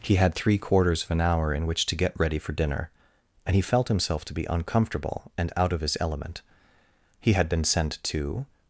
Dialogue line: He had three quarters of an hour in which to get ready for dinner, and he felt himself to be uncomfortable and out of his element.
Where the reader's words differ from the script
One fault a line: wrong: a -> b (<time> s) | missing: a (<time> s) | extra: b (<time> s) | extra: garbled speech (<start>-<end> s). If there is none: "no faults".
extra: He had been sent to (7.2 s)